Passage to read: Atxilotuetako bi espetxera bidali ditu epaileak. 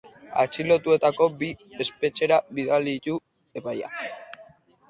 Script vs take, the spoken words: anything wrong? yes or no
no